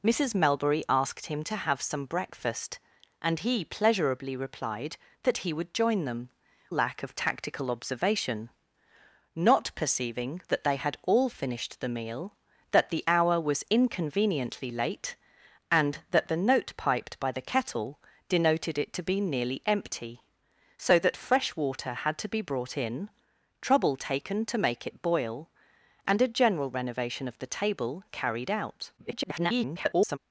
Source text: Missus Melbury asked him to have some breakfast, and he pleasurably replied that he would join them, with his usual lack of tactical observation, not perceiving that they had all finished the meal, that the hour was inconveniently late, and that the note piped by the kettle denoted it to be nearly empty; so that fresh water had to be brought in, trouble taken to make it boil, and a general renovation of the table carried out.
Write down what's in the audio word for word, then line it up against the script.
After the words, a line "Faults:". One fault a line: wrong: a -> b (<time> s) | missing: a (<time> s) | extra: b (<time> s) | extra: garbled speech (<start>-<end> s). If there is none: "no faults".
Missus Melbury asked him to have some breakfast, and he pleasurably replied that he would join them, lack of tactical observation, not perceiving that they had all finished the meal, that the hour was inconveniently late, and that the note piped by the kettle denoted it to be nearly empty; so that fresh water had to be brought in, trouble taken to make it boil, and a general renovation of the table carried out. [garbled]
Faults:
missing: with his usual (6.3 s)
extra: garbled speech (29.0-30.2 s)